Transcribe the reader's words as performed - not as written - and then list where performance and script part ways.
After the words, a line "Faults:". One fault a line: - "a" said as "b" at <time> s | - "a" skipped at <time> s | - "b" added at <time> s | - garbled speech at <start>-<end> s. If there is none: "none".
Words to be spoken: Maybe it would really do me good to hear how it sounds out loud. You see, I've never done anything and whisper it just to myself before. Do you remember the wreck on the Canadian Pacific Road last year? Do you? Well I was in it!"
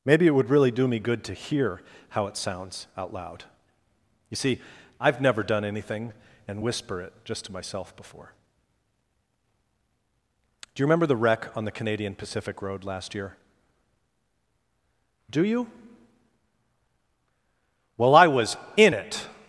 Maybe it would really do me good to hear how it sounds out loud. You see, I've never done anything and whisper it just to myself before. Do you remember the wreck on the Canadian Pacific Road last year? Do you? Well I was in it!"
Faults:
none